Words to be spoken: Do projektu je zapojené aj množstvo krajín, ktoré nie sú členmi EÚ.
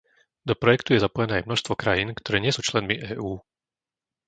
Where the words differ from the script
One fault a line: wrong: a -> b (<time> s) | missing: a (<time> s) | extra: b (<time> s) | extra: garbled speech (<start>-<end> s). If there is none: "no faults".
no faults